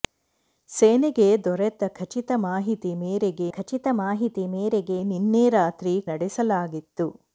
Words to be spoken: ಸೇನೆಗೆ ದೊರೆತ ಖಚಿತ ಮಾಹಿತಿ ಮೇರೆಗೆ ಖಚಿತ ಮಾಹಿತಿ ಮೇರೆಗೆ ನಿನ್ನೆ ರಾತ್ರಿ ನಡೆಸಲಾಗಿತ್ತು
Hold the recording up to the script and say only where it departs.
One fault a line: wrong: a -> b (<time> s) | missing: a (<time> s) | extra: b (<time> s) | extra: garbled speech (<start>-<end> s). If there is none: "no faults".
no faults